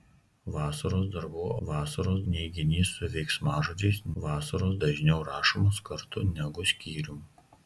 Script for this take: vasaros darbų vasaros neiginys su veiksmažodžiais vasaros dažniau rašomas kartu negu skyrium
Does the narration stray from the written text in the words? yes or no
no